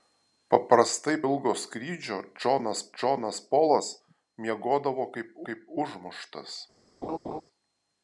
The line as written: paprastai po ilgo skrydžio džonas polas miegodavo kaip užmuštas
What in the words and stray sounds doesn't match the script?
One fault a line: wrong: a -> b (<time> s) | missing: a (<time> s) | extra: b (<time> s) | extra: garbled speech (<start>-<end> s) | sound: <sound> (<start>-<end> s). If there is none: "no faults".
missing: po (1.1 s)
extra: džonas (3.0 s)
extra: kaip (5.5 s)
sound: laugh (7.0-7.4 s)